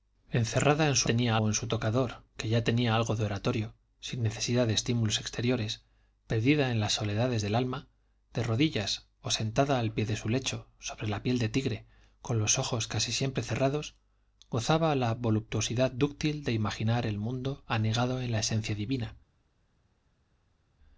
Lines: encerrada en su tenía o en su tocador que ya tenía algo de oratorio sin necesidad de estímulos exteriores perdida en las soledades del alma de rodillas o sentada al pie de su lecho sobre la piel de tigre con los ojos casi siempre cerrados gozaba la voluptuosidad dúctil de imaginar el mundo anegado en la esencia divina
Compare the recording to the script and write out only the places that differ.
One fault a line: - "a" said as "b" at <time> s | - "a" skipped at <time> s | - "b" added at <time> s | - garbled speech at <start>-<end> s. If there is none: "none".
none